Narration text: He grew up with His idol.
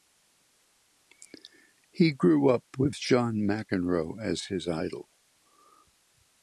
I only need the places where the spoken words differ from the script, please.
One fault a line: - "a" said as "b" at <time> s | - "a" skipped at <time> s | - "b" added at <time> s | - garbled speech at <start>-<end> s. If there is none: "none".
- "John McEnroe as" added at 2.9 s